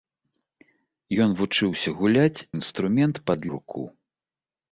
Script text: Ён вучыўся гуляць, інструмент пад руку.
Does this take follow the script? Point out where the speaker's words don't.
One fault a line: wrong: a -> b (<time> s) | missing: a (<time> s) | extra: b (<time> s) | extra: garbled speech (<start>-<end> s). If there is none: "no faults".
no faults